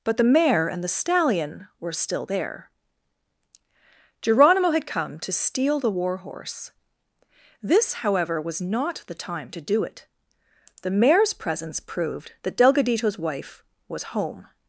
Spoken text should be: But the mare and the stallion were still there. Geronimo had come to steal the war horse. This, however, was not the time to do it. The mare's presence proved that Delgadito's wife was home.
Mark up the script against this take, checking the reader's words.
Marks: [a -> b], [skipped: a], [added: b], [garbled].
But the mare and the stallion were still there. Geronimo had come to steal the war horse. This, however, was not the time to do it. The mare's presence proved that Delgadito's wife was home.